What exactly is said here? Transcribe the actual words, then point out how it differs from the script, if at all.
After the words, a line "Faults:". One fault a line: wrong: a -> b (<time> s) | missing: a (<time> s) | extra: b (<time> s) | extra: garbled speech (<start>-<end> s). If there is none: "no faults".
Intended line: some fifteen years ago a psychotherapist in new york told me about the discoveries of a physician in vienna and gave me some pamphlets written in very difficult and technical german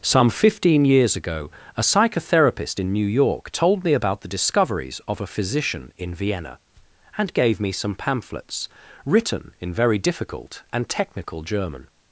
some fifteen years ago a psychotherapist in new york told me about the discoveries of a physician in vienna and gave me some pamphlets written in very difficult and technical german
Faults:
no faults